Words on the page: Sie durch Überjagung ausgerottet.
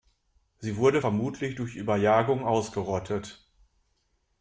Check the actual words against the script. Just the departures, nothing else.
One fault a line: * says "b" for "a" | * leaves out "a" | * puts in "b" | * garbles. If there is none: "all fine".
* puts in "wurde vermutlich"